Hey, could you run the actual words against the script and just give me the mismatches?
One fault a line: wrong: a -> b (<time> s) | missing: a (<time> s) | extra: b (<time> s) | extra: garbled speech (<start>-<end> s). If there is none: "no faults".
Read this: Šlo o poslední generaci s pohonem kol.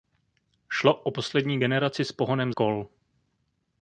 no faults